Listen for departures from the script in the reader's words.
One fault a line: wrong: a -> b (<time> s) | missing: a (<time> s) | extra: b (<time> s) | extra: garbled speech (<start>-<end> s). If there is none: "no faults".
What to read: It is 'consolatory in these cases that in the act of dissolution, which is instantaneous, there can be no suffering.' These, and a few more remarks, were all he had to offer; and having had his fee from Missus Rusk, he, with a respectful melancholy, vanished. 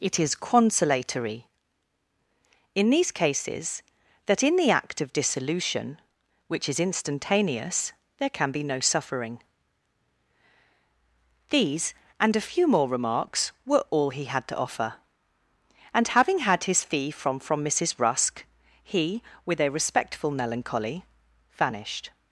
extra: from (17.4 s)